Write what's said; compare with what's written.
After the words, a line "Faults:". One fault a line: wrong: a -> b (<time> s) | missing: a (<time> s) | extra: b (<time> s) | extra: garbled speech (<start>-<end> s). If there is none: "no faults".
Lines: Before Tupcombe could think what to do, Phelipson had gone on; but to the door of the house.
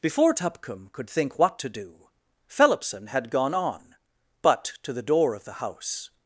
Before Tupcombe could think what to do, Phelipson had gone on; but to the door of the house.
Faults:
no faults